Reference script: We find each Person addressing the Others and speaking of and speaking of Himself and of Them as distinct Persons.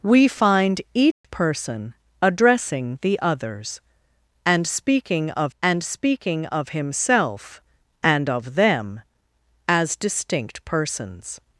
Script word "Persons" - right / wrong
right